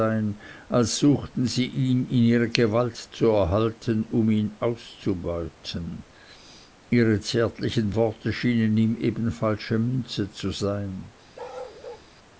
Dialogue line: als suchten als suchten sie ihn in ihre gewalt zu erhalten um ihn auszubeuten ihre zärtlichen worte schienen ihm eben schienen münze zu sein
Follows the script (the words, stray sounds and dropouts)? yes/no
no